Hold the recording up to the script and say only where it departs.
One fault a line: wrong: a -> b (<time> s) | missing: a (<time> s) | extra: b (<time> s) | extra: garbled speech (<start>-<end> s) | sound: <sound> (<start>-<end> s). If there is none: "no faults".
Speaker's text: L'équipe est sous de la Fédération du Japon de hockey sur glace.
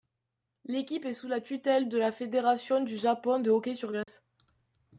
extra: la tutelle (1.3 s)
sound: dropout (4.0-4.1 s)